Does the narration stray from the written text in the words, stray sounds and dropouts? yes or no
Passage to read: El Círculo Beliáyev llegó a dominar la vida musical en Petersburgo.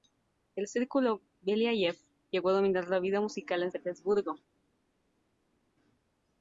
no